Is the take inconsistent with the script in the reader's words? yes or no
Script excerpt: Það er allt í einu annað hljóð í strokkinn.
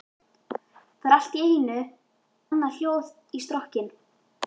no